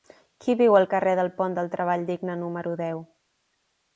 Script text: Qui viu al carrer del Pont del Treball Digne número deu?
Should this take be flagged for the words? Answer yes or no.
no